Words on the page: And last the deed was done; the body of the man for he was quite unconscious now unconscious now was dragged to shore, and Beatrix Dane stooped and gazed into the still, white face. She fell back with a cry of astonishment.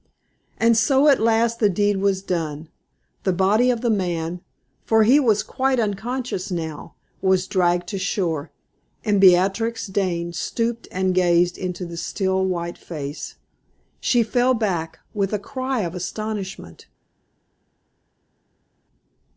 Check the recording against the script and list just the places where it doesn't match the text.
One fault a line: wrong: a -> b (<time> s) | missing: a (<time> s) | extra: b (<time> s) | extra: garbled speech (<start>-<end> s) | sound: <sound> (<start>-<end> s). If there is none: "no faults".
extra: so at (0.8 s)
missing: unconscious now (7.0 s)